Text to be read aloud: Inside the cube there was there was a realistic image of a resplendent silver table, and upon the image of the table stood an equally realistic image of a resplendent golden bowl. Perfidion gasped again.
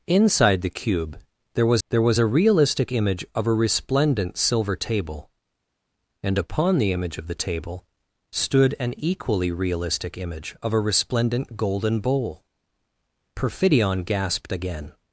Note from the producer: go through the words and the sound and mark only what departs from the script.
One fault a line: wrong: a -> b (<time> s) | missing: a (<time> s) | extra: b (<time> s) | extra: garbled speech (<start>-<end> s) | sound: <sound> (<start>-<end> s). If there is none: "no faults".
no faults